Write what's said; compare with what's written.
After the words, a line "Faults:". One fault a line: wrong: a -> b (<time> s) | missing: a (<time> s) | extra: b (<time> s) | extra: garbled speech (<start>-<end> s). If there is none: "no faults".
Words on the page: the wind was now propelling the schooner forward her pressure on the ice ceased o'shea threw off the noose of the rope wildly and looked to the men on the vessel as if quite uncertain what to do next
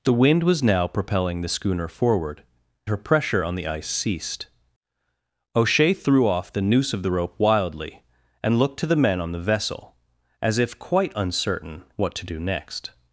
the wind was now propelling the schooner forward her pressure on the ice ceased o'shea threw off the noose of the rope wildly and looked to the men on the vessel as if quite uncertain what to do next
Faults:
no faults